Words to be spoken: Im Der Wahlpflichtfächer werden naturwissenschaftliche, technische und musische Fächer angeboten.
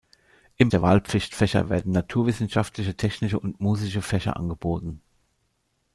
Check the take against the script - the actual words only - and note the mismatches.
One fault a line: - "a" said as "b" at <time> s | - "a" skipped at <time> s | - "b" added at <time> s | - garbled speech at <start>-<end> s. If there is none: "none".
none